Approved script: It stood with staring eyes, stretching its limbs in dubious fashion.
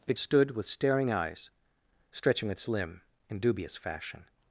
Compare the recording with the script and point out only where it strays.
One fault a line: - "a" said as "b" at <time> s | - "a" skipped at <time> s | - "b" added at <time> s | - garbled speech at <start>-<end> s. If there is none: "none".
- "limbs" said as "limb" at 2.7 s